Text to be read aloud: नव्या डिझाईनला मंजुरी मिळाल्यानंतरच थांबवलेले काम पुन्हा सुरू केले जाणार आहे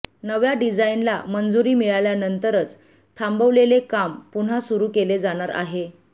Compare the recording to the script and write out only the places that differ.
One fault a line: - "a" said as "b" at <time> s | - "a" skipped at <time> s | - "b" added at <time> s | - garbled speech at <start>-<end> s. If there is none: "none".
none